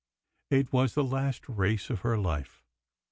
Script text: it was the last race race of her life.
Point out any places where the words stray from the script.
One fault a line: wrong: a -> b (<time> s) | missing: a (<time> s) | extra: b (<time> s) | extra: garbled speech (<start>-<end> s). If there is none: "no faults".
missing: race (1.9 s)